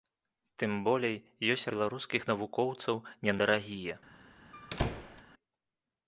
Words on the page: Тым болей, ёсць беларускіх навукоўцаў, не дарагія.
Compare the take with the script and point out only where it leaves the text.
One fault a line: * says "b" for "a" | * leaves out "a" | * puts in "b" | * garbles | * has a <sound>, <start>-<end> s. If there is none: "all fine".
* has a squeak, 4.5-5.2 s